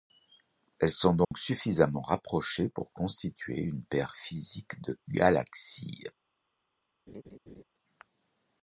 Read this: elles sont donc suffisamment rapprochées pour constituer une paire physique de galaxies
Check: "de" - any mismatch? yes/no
no